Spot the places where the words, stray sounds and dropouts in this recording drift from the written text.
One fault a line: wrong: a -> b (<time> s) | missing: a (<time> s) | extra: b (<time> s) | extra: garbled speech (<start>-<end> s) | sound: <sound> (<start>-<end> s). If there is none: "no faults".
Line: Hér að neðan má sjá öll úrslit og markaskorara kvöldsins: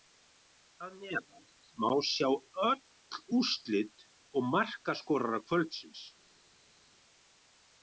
no faults